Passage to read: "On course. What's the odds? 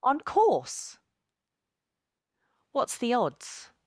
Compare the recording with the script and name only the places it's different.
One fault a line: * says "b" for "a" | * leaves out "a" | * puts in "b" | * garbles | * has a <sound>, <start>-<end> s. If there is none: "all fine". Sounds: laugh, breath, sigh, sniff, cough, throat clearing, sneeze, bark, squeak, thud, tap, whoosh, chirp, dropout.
all fine